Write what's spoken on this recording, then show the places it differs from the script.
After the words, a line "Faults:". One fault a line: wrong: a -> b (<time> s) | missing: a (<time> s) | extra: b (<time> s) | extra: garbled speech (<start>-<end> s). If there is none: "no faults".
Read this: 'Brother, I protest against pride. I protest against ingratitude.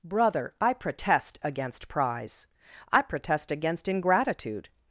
'Brother, I protest against prize. I protest against ingratitude.
Faults:
wrong: pride -> prize (1.9 s)